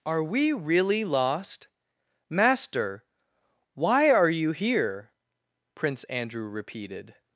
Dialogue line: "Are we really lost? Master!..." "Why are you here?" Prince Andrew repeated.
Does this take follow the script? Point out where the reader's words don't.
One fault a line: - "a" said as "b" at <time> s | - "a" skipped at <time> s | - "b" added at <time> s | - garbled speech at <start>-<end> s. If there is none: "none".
none